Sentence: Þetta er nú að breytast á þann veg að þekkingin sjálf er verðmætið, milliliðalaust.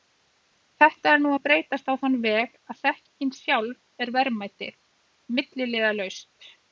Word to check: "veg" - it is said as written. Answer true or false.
true